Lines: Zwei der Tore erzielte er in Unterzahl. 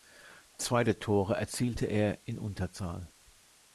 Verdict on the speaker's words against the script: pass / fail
pass